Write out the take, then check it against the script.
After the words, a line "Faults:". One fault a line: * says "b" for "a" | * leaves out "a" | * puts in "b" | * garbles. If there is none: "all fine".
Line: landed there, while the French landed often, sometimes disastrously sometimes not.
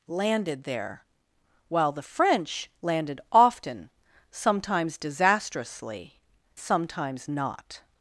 landed there, while the French landed often, sometimes disastrously sometimes not.
Faults:
all fine